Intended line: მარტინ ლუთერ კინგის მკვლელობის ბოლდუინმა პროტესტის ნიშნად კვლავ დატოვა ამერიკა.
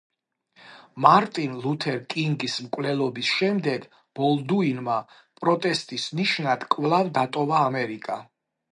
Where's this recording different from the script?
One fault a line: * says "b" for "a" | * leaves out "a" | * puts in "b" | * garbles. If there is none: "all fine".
* puts in "შემდეგ"